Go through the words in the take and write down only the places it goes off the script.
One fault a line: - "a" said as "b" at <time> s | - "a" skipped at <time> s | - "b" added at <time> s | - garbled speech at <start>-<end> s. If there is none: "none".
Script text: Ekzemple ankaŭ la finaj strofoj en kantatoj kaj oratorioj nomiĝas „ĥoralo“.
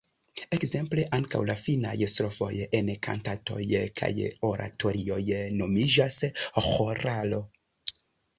none